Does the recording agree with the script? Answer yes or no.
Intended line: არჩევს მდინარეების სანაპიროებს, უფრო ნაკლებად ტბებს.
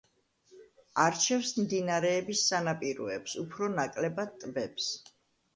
yes